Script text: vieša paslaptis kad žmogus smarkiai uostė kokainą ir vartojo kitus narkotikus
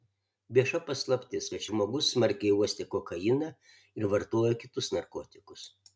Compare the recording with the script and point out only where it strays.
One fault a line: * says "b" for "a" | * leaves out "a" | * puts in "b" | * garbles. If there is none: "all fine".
all fine